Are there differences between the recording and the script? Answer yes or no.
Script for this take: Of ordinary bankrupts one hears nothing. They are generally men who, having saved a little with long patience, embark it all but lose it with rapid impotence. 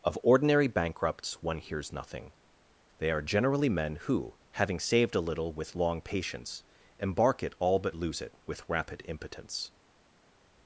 no